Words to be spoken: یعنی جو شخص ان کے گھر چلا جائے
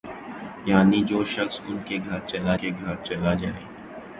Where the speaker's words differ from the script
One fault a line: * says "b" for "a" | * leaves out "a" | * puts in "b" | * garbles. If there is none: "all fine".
* puts in "کے گھر چلا"